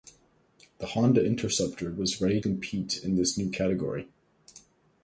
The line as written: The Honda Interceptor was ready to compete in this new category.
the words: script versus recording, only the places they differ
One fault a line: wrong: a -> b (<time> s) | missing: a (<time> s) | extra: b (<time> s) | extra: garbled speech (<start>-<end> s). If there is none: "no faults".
missing: to (2.4 s)